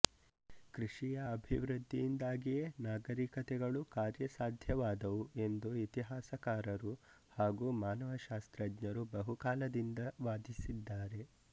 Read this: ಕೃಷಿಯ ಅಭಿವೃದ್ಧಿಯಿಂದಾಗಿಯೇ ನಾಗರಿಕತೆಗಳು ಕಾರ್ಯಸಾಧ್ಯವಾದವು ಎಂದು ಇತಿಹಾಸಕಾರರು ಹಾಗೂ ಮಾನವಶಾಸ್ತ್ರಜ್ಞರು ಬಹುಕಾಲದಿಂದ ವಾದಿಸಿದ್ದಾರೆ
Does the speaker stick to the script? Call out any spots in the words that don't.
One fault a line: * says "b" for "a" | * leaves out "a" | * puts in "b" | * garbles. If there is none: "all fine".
all fine